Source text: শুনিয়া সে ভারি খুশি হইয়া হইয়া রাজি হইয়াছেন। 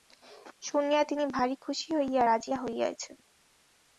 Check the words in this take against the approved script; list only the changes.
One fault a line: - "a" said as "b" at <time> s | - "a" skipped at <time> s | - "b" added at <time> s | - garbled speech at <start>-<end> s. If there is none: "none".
- "সে" said as "তিনি" at 1.0 s
- "হইয়া" skipped at 2.2 s